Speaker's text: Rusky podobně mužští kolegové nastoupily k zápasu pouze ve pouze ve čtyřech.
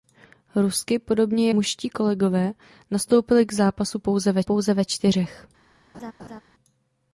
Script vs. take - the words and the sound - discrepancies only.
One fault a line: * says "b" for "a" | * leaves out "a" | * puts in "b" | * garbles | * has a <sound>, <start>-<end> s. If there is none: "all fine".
* has a laugh, 5.9-6.4 s